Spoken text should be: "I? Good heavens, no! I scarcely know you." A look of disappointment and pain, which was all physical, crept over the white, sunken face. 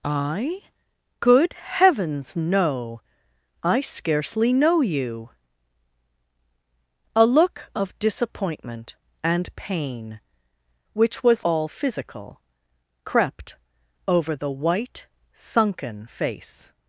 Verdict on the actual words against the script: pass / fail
pass